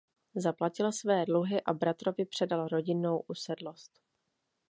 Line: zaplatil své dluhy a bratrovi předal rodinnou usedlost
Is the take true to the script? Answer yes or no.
yes